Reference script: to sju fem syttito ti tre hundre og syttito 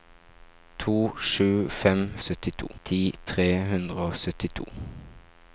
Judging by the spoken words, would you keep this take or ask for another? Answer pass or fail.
pass